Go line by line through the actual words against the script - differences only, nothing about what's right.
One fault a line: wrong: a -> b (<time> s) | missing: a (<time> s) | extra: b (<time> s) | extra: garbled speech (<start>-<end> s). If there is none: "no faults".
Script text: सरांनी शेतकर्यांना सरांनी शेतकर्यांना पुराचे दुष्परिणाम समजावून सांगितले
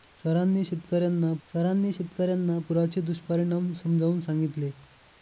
no faults